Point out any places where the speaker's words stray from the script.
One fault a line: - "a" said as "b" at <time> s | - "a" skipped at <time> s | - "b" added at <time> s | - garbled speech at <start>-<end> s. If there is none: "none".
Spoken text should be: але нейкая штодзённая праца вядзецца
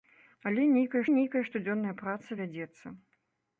- "нейкая" added at 1.2 s